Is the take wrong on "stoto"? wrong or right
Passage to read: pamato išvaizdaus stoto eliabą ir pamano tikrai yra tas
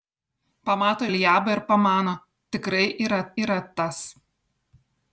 wrong